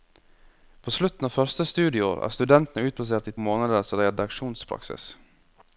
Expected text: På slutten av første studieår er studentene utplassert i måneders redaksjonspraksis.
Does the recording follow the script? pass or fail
pass